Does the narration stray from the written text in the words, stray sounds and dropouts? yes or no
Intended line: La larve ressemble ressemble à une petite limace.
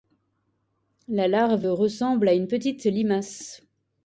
yes